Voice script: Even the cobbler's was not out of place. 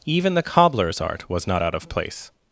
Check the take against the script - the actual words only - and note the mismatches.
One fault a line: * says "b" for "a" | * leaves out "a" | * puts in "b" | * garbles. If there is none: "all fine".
* puts in "art"